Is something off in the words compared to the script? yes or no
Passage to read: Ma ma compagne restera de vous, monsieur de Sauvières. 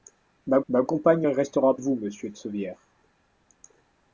no